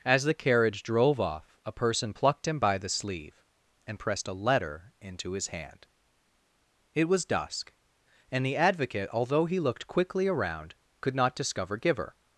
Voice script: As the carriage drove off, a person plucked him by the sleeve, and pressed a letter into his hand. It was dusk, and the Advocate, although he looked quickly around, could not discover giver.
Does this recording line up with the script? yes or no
yes